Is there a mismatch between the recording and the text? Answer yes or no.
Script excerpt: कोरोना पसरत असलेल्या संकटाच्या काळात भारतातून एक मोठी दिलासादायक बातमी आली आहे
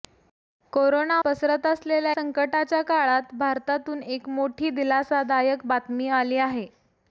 no